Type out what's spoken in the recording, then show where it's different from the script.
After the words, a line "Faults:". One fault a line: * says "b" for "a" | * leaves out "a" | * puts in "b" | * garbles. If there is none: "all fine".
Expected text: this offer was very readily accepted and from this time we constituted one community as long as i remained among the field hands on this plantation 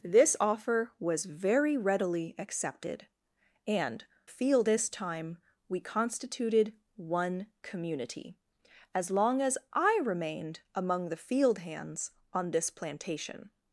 this offer was very readily accepted and field this time we constituted one community as long as i remained among the field hands on this plantation
Faults:
* says "field" for "from"